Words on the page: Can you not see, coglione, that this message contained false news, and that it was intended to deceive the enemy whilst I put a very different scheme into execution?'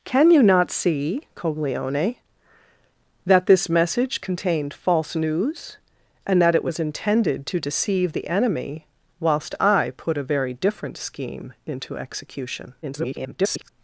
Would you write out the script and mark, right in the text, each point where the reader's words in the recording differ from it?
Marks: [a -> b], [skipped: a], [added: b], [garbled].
Can you not see, coglione, that this message contained false news, and that it was intended to deceive the enemy whilst I put a very different scheme into execution?' [garbled]